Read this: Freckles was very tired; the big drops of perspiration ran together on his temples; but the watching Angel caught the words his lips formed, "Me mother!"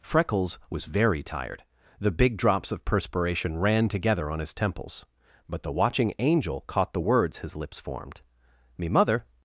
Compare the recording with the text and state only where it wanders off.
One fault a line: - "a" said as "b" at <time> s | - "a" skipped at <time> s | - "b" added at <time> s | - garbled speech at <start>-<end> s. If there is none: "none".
none